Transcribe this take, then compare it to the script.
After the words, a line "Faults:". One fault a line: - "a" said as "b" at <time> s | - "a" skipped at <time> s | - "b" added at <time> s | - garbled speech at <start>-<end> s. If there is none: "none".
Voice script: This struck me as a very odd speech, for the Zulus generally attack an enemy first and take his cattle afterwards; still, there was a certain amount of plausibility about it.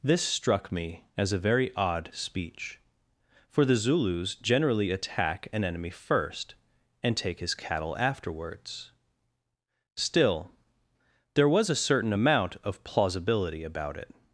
This struck me as a very odd speech, for the Zulus generally attack an enemy first and take his cattle afterwards; still, there was a certain amount of plausibility about it.
Faults:
none